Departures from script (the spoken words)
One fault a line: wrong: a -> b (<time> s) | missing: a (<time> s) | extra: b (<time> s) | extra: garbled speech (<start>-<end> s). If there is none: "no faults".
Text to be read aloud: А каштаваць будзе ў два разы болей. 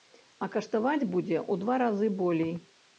no faults